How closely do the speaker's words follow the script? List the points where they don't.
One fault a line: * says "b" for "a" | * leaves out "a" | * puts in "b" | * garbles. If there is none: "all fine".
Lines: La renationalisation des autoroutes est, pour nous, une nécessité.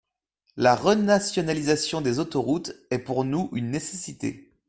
all fine